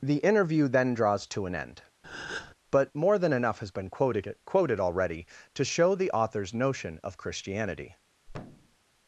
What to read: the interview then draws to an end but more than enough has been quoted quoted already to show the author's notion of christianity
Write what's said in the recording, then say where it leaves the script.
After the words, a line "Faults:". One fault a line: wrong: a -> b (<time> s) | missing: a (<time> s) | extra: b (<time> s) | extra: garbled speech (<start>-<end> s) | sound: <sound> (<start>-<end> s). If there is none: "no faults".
the interview then draws to an end but more than enough has been quoted quoted already to show the author's notion of christianity
Faults:
sound: breath (2.0-2.5 s)
sound: thud (8.3-8.8 s)